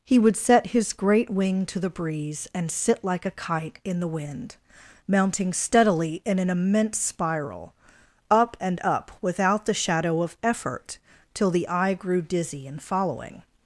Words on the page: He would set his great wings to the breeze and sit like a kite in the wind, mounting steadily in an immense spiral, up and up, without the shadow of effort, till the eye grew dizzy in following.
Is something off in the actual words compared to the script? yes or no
yes